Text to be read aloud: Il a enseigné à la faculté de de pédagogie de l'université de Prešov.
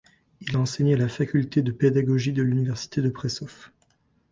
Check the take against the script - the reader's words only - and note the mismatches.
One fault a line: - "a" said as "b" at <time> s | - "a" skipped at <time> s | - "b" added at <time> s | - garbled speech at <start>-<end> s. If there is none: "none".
- "de" skipped at 1.7 s